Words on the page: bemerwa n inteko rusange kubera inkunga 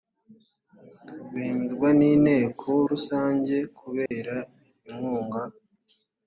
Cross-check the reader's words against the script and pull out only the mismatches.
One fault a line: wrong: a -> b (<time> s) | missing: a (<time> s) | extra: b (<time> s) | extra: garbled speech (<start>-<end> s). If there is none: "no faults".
no faults